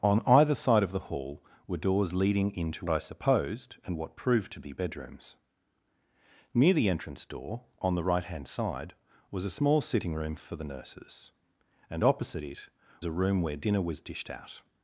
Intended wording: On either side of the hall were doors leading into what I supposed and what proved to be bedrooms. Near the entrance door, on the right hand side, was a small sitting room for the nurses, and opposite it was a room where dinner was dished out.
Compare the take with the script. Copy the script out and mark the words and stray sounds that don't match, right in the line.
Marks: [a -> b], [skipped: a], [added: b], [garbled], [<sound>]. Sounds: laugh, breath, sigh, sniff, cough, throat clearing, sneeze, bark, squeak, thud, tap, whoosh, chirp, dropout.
On either side of the hall were doors leading into [skipped: what] I supposed and what proved to be bedrooms. Near the entrance door, on the right hand side, was a small sitting room for the nurses, and opposite it [skipped: was] a room where dinner was dished out.